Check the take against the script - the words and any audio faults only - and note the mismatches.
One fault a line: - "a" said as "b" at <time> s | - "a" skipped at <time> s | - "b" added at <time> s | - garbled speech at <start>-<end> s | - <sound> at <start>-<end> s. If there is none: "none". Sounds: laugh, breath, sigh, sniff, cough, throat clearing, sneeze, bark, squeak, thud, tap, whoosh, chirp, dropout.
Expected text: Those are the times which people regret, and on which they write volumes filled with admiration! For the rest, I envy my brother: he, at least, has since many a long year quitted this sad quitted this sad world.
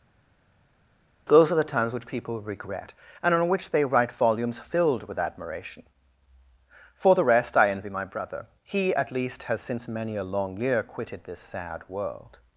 - "quitted this sad" skipped at 11.8 s